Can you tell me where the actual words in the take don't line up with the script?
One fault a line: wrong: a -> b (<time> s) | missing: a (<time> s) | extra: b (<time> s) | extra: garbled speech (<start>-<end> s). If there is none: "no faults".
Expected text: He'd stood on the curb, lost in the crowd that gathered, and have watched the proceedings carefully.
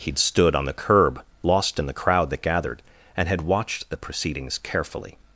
wrong: have -> had (3.3 s)